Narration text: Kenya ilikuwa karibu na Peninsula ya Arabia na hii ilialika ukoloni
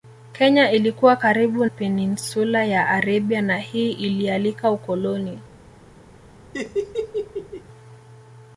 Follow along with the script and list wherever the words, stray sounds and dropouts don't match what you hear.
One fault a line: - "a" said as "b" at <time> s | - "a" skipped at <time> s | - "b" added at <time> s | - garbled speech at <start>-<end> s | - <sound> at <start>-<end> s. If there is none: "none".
- "na" skipped at 1.6 s
- laugh at 6.5-7.6 s